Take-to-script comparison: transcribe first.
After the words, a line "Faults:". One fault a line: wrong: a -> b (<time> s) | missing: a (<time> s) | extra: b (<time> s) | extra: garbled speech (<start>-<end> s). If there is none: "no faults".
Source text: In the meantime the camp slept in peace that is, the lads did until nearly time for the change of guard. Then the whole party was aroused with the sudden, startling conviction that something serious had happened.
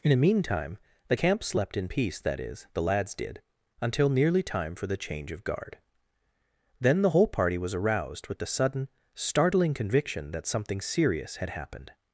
In the meantime the camp slept in peace that is, the lads did until nearly time for the change of guard. Then the whole party was aroused with the sudden, startling conviction that something serious had happened.
Faults:
no faults